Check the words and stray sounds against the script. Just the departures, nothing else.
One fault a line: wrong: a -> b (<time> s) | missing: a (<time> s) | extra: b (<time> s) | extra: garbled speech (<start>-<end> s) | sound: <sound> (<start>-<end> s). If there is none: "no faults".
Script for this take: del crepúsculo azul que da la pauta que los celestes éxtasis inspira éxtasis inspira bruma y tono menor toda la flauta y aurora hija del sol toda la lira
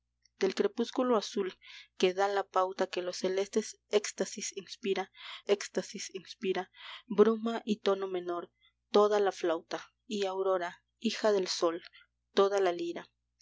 no faults